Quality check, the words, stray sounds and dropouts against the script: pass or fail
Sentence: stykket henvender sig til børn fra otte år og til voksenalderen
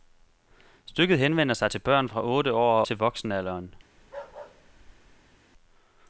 fail